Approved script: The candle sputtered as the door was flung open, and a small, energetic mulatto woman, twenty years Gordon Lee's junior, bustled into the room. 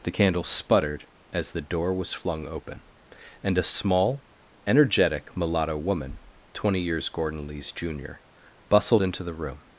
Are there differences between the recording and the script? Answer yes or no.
no